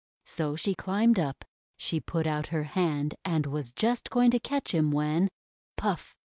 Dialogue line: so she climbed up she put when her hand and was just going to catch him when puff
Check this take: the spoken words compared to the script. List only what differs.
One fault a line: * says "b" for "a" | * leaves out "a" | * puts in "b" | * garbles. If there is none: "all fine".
* says "out" for "when"